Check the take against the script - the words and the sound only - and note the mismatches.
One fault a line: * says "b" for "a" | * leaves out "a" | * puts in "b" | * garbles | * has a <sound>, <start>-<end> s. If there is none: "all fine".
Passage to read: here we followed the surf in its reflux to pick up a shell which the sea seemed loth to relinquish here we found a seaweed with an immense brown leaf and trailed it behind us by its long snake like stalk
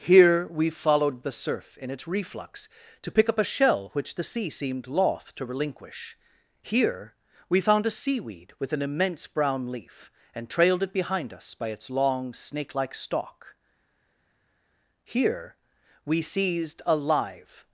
* puts in "here we seized a live"